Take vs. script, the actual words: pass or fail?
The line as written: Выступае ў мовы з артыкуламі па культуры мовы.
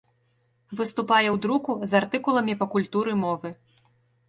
fail